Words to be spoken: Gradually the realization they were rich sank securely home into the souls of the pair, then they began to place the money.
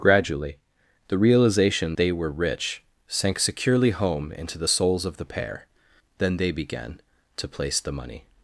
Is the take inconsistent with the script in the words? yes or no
no